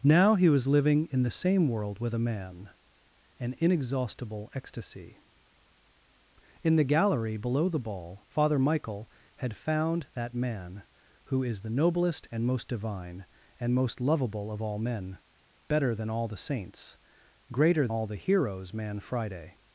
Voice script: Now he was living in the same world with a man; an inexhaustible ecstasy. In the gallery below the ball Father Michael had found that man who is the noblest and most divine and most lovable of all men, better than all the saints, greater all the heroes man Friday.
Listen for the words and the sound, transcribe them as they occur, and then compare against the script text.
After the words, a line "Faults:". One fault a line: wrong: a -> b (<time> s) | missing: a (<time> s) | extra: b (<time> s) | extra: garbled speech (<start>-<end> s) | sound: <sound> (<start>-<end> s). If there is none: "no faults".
Now he was living in the same world with a man; an inexhaustible ecstasy. In the gallery below the ball Father Michael had found that man who is the noblest and most divine and most lovable of all men, better than all the saints, greater all the heroes man Friday.
Faults:
no faults